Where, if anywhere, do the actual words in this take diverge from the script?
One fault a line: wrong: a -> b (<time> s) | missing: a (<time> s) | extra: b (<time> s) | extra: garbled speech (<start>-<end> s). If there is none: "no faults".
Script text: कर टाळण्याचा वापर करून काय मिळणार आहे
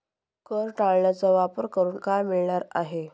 no faults